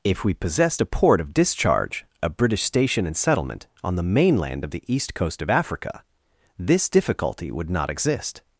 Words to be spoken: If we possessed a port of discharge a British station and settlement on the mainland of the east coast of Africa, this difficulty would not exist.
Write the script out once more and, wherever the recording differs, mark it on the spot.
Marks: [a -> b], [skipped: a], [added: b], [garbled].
If we possessed a port of discharge a British station and settlement on the mainland of the east coast of Africa, this difficulty would not exist.